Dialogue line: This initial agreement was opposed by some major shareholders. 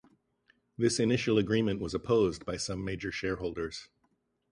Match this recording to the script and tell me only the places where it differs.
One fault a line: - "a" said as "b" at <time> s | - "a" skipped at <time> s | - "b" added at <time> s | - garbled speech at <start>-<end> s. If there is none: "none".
none